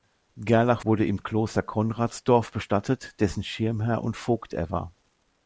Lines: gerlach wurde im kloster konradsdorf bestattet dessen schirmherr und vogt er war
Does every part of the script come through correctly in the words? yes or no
yes